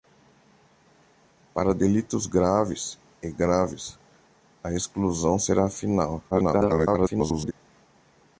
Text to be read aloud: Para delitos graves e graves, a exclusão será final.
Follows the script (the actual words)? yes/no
no